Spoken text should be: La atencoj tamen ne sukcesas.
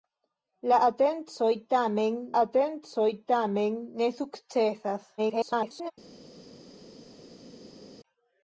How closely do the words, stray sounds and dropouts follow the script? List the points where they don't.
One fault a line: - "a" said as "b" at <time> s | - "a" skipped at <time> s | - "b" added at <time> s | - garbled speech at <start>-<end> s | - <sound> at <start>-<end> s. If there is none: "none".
- "atencoj tamen" added at 2.4 s
- garbled speech at 5.2-5.9 s